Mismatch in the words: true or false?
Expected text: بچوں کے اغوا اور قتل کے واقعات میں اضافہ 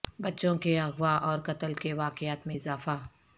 false